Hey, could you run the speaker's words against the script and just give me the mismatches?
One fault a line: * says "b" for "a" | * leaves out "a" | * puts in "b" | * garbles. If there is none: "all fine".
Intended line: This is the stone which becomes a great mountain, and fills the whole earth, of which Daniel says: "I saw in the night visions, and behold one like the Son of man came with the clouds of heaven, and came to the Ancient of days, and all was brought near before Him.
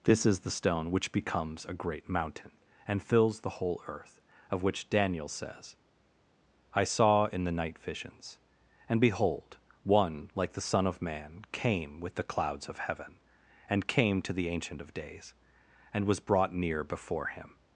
* leaves out "all"